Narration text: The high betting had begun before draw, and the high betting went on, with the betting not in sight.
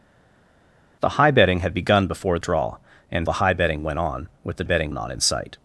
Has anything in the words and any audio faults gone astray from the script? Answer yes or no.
no